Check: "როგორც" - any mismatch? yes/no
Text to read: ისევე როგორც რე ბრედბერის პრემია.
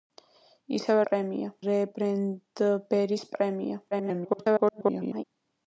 yes